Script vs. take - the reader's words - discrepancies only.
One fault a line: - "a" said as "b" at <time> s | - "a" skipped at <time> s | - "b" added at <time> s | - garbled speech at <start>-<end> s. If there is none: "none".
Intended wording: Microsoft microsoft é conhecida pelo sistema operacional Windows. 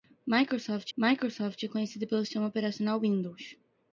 none